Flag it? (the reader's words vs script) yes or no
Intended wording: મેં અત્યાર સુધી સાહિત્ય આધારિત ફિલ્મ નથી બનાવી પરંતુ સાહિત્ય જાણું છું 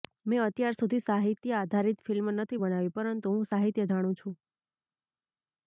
yes